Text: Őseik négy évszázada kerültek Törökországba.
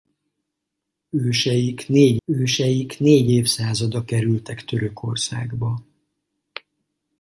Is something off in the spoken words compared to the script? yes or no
yes